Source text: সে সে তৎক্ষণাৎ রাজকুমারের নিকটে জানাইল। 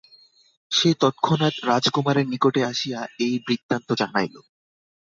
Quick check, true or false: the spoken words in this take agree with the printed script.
false